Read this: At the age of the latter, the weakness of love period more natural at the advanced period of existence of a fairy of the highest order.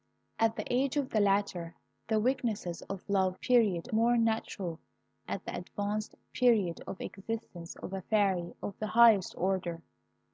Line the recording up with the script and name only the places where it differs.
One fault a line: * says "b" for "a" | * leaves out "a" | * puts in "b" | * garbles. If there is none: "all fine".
all fine